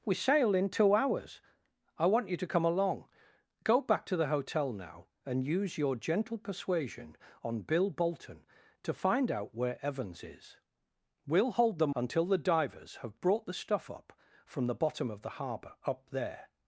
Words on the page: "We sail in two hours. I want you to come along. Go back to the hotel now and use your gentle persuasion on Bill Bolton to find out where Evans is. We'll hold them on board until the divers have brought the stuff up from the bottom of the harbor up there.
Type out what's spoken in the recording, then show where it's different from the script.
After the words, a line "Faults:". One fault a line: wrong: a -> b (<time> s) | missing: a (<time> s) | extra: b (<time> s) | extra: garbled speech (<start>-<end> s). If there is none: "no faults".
"We sail in two hours. I want you to come along. Go back to the hotel now and use your gentle persuasion on Bill Bolton to find out where Evans is. We'll hold them until the divers have brought the stuff up from the bottom of the harbor up there.
Faults:
missing: on board (11.9 s)